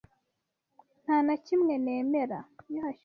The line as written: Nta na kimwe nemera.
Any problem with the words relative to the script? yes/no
no